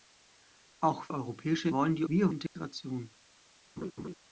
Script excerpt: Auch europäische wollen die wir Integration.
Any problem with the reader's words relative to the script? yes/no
no